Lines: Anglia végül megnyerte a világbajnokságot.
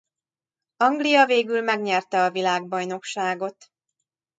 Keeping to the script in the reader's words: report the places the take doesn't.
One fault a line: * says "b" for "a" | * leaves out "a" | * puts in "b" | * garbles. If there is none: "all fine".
all fine